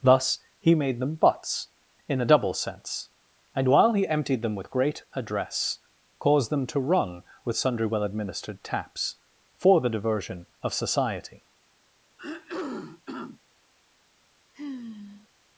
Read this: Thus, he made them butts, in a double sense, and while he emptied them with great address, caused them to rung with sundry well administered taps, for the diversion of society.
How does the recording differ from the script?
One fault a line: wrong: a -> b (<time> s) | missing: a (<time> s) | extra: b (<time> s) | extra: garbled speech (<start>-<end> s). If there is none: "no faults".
no faults